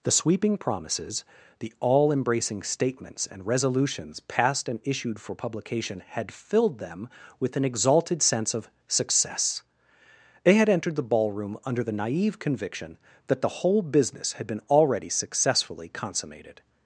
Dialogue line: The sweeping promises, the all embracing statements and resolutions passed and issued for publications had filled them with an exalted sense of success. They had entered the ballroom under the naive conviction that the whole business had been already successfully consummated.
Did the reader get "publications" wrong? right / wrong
wrong